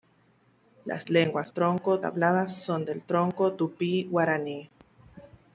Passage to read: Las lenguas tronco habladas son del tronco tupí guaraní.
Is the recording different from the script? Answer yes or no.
no